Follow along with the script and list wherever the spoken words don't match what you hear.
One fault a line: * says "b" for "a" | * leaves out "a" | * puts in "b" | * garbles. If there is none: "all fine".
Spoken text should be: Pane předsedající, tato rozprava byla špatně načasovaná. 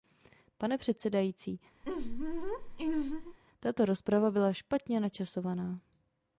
all fine